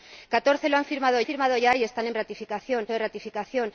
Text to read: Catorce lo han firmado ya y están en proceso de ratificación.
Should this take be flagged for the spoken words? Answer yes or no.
yes